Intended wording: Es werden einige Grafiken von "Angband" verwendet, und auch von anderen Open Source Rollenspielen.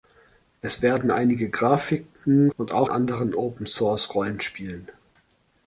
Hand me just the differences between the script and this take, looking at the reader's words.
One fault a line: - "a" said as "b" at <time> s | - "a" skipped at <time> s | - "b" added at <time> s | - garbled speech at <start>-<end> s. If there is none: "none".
- "von Angband verwendet" skipped at 2.5 s
- "von" skipped at 2.9 s